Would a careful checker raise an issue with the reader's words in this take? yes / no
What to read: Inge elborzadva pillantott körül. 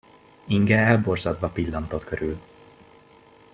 no